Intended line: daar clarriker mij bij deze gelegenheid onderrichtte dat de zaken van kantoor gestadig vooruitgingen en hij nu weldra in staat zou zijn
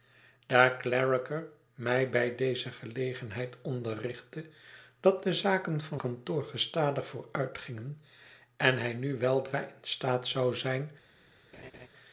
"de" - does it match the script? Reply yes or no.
yes